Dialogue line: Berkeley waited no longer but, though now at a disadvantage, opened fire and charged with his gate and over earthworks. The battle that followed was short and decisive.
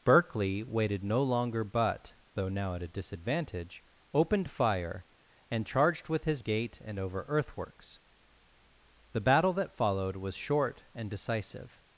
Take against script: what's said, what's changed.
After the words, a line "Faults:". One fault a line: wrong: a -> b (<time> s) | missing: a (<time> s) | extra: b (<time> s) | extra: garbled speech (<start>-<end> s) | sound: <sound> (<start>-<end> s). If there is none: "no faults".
Berkeley waited no longer but, though now at a disadvantage, opened fire and charged with his gate and over earthworks. The battle that followed was short and decisive.
Faults:
no faults